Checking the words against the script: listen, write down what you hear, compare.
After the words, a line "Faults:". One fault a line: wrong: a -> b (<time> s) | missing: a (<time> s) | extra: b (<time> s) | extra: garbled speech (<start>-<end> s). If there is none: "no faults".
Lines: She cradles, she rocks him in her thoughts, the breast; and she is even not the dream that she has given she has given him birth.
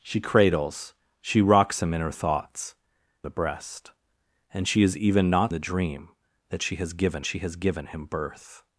She cradles, she rocks him in her thoughts, the breast; and she is even not the dream that she has given she has given him birth.
Faults:
no faults